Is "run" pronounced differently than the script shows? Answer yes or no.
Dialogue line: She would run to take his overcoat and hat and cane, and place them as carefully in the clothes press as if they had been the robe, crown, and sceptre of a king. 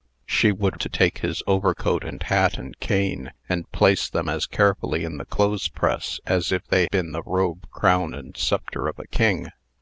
yes